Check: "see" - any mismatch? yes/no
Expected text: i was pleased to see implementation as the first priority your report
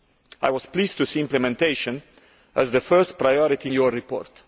no